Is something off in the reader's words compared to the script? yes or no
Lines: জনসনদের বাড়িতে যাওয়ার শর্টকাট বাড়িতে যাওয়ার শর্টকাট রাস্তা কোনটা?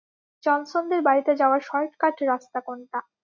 yes